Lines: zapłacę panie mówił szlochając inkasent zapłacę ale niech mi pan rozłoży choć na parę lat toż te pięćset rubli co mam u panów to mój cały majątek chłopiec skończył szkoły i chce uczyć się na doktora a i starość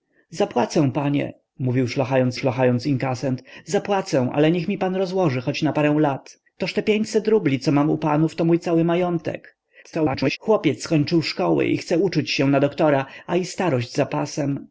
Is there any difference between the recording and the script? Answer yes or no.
yes